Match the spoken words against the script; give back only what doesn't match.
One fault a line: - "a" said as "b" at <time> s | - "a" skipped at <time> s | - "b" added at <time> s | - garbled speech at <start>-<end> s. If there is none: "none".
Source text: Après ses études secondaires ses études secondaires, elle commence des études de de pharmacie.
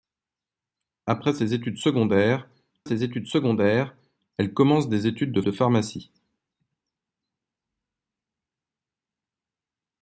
none